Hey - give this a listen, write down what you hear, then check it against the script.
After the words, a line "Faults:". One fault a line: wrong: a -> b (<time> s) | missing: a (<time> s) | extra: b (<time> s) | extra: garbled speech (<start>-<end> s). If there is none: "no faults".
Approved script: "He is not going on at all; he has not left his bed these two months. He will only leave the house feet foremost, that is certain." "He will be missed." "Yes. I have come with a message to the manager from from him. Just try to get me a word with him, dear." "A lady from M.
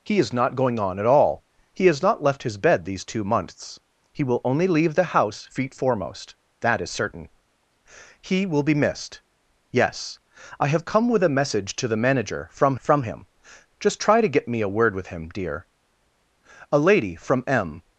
"He is not going on at all; he has not left his bed these two months. He will only leave the house feet foremost, that is certain." "He will be missed." "Yes. I have come with a message to the manager from from him. Just try to get me a word with him, dear." "A lady from M.
Faults:
no faults